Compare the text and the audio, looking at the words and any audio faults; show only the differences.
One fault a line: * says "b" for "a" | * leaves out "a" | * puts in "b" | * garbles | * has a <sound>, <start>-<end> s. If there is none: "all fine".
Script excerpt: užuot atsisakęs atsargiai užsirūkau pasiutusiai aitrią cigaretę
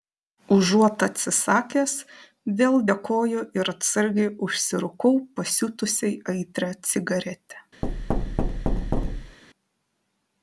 * puts in "vėl dėkoju ir"
* has a thud, 7.8-9.4 s